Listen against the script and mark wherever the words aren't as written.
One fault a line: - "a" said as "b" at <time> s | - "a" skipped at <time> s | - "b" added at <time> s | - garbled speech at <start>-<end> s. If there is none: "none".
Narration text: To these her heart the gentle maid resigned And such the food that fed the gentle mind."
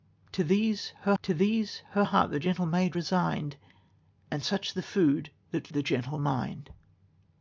- "to these her" added at 1.2 s
- "fed" skipped at 5.7 s